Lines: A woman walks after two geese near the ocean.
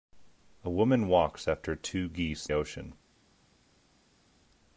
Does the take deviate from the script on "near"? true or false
true